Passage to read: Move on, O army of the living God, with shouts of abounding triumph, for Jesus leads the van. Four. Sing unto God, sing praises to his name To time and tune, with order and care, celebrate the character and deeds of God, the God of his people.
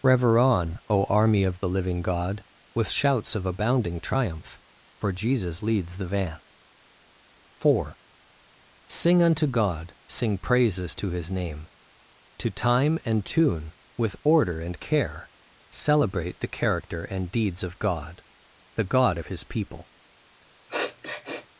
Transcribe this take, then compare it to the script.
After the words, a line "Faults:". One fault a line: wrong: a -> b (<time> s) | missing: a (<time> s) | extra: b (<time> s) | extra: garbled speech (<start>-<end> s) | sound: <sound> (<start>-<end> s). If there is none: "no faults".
Rever on, O army of the living God, with shouts of abounding triumph, for Jesus leads the van. Four. Sing unto God, sing praises to his name To time and tune, with order and care, celebrate the character and deeds of God, the God of his people.
Faults:
wrong: Move -> Rever (0.0 s)
sound: sniff (20.7-21.5 s)